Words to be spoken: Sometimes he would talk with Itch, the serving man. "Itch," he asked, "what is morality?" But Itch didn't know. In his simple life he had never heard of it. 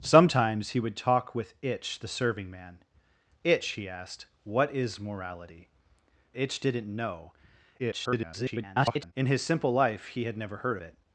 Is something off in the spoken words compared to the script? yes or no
yes